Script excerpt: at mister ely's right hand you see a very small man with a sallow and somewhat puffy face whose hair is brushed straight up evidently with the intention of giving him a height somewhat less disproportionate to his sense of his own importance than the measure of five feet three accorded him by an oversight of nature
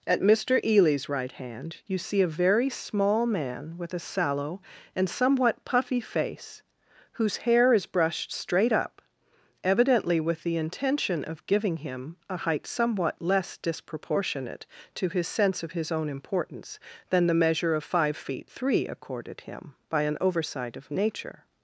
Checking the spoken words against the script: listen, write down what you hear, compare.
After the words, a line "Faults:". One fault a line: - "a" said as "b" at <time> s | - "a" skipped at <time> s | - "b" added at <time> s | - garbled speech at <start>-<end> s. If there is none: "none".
at mister ely's right hand you see a very small man with a sallow and somewhat puffy face whose hair is brushed straight up evidently with the intention of giving him a height somewhat less disproportionate to his sense of his own importance than the measure of five feet three accorded him by an oversight of nature
Faults:
none